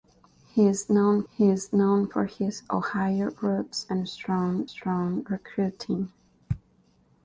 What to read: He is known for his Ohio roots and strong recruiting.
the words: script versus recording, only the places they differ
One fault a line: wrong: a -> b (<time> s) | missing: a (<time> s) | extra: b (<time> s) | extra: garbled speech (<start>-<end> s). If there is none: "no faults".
extra: he is known (1.3 s)
extra: strong (4.7 s)